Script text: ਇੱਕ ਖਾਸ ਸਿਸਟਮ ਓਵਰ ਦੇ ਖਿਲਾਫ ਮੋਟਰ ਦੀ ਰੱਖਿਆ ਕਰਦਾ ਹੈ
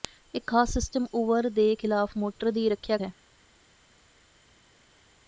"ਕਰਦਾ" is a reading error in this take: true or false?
true